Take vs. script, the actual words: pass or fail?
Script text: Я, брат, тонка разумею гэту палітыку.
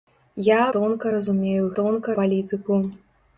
fail